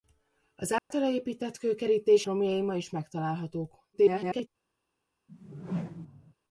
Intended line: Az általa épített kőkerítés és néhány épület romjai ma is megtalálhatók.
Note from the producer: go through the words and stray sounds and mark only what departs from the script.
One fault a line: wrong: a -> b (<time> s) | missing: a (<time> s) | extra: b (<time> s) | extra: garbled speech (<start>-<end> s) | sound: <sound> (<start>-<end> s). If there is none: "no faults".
sound: dropout (0.8-0.9 s)
missing: és néhány épület (2.2 s)
extra: garbled speech (3.9-4.5 s)
sound: whoosh (5.3-6.3 s)